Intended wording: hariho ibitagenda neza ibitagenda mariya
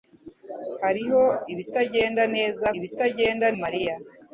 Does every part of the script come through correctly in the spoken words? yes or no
yes